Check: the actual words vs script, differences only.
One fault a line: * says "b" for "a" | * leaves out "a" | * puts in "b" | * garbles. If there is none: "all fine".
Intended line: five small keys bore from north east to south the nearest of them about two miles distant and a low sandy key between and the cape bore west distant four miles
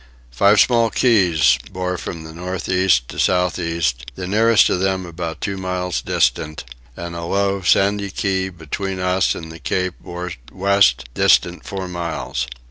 * puts in "east"
* puts in "us"